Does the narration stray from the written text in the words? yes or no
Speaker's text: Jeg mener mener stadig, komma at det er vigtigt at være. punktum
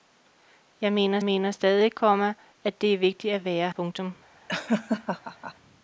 no